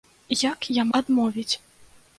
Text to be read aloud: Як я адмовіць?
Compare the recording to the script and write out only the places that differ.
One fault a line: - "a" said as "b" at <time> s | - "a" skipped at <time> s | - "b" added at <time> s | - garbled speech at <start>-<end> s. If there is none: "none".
none